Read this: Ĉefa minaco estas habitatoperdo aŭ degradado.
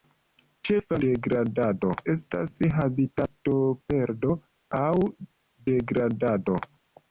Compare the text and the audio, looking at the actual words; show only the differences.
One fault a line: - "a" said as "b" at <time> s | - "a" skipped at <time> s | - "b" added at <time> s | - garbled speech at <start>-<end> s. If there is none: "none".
- "minaco" said as "degradado" at 1.1 s